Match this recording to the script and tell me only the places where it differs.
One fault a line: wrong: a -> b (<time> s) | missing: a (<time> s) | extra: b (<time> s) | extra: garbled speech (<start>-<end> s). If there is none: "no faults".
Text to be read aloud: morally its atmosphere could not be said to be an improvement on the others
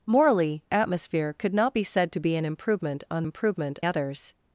missing: its (0.6 s)
wrong: the -> improvement (3.2 s)